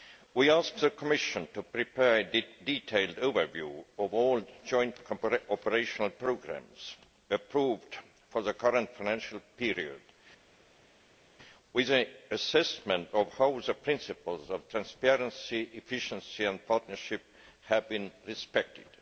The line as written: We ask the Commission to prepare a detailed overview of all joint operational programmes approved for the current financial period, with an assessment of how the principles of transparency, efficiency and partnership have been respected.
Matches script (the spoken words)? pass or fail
pass